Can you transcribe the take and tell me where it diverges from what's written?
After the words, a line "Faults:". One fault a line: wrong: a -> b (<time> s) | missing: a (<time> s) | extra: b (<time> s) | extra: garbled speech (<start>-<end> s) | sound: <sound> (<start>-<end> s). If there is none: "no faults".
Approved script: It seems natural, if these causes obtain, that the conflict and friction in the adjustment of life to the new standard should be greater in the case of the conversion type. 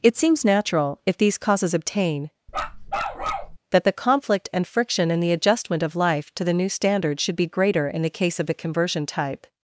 It seems natural, if these causes obtain, that the conflict and friction in the adjustment of life to the new standard should be greater in the case of the conversion type.
Faults:
sound: bark (2.5-3.6 s)